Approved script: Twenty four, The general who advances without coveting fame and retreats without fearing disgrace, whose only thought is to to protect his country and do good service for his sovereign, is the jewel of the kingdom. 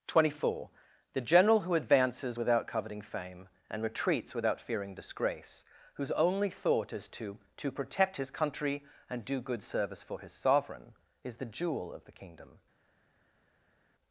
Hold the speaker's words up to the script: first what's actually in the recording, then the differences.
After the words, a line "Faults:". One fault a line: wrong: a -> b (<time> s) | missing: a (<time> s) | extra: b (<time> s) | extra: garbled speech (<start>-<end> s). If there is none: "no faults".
Twenty four, The general who advances without coveting fame and retreats without fearing disgrace, whose only thought is to to protect his country and do good service for his sovereign, is the jewel of the kingdom.
Faults:
no faults